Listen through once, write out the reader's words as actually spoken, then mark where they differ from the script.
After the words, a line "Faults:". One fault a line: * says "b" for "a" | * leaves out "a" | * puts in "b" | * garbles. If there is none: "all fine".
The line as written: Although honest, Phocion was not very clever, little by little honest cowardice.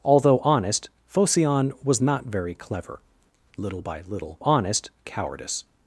Although honest, Phocion was not very clever, little by little honest cowardice.
Faults:
all fine